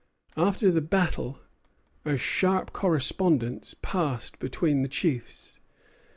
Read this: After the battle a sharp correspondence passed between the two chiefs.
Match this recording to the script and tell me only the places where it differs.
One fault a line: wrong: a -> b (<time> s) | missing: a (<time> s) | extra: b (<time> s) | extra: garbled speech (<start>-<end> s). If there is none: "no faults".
missing: two (4.9 s)